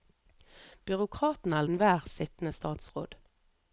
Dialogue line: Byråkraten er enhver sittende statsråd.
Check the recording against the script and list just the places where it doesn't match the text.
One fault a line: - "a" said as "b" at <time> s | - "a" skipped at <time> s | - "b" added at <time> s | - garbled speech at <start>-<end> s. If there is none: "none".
none